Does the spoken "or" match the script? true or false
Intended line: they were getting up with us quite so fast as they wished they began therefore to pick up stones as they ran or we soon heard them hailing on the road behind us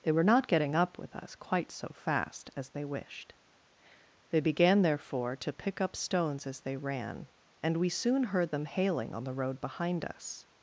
false